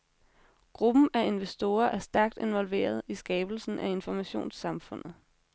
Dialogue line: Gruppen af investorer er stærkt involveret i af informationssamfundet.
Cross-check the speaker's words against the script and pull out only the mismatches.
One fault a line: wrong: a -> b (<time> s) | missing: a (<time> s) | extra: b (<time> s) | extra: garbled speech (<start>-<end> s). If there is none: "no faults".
extra: skabelsen (3.1 s)